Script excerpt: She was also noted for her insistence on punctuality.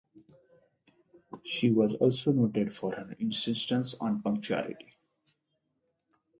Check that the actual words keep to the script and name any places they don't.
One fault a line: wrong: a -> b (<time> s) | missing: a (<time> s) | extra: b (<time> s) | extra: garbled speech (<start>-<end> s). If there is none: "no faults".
no faults